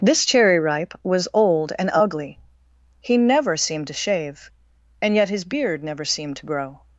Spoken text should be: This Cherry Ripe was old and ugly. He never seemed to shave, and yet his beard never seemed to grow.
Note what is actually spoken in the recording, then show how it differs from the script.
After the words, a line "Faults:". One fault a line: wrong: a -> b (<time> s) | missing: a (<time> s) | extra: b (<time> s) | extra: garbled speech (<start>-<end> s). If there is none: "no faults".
This Cherry Ripe was old and ugly. He never seemed to shave, and yet his beard never seemed to grow.
Faults:
no faults